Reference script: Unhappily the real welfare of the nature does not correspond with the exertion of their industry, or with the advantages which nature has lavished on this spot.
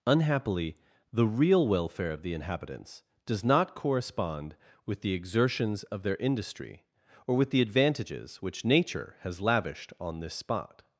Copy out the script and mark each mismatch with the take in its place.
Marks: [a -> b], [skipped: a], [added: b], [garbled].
Unhappily the real welfare of the [nature -> inhabitants] does not correspond with the [exertion -> exertions] of their industry, or with the advantages which nature has lavished on this spot.